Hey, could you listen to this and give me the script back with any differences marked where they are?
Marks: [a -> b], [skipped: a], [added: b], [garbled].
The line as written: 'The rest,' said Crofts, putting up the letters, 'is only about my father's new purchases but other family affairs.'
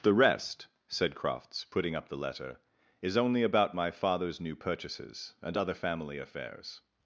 'The rest,' said Crofts, putting up the [letters, -> letter] 'is only about my father's new purchases [but -> and] other family affairs.'